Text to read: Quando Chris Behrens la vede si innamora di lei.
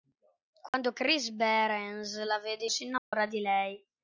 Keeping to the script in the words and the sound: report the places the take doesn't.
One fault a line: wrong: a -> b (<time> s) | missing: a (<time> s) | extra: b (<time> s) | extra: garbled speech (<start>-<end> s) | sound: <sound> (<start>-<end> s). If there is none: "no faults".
sound: dropout (0.7-0.7 s)
sound: dropout (3.0-3.1 s)